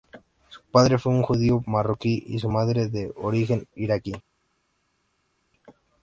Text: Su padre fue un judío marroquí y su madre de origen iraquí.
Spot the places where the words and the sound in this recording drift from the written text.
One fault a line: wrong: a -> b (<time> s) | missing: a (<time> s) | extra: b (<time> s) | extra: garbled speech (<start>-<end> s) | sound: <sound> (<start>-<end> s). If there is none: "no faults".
no faults